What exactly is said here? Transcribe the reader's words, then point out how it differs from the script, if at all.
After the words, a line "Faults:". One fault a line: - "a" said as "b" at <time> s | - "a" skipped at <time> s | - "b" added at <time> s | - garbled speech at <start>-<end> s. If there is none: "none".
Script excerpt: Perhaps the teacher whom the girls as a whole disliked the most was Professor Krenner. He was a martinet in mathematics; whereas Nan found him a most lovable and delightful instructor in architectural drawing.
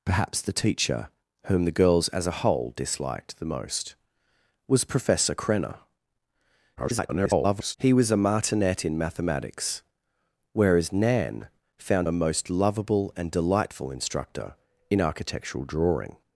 Perhaps the teacher whom the girls as a whole disliked the most was Professor Krenner. [garbled] He was a martinet in mathematics; whereas Nan found a most lovable and delightful instructor in architectural drawing.
Faults:
- garbled speech at 6.8-7.8 s
- "him" skipped at 12.1 s